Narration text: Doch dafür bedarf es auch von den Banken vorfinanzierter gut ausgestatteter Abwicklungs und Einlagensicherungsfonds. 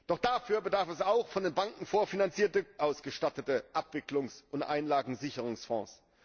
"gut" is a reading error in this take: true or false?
true